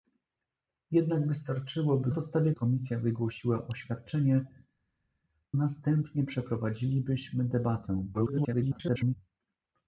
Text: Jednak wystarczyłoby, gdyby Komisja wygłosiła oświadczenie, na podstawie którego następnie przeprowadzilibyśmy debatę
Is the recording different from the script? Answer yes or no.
yes